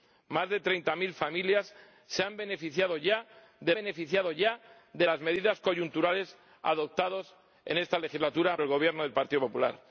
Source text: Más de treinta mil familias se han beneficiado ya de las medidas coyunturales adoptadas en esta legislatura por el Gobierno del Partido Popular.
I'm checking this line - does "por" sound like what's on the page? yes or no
no